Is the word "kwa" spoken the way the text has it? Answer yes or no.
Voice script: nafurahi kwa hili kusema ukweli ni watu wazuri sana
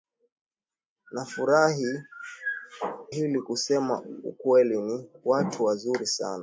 no